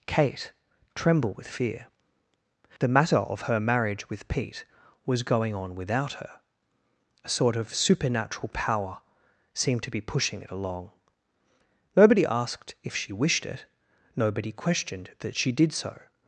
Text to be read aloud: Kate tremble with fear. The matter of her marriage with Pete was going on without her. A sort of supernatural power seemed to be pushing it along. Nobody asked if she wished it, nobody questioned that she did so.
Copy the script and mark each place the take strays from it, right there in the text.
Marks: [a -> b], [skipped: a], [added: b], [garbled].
Kate tremble with fear. The matter of her marriage with Pete was going on without her. A sort of supernatural power seemed to be pushing it along. Nobody asked if she wished it, nobody questioned that she did so.